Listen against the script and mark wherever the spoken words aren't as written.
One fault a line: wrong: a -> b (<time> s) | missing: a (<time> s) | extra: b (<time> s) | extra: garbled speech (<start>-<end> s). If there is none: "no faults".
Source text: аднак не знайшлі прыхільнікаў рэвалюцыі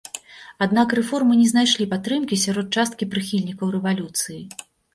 extra: рэформы (1.0 s)
extra: падтрымкі сярод часткі (1.9 s)